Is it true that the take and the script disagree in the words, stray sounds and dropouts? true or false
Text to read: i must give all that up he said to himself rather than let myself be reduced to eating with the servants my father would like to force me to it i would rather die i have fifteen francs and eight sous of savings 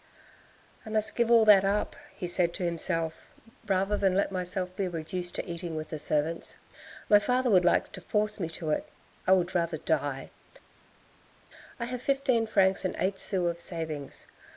false